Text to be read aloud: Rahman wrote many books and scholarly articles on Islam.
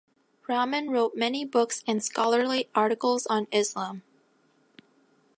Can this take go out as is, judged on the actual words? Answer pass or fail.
pass